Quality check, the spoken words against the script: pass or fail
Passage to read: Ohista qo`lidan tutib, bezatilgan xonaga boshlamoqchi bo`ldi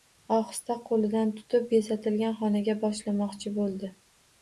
pass